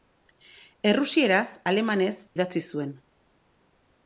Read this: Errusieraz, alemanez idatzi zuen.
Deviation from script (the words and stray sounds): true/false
false